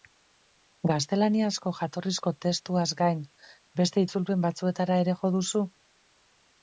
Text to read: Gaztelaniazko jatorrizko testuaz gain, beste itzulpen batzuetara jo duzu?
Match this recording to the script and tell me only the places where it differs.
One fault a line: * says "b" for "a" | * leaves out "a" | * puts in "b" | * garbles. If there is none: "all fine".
* puts in "ere"